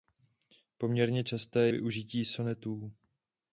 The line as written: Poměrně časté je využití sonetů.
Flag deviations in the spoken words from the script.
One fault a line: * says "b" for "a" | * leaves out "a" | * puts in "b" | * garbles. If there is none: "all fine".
* leaves out "je"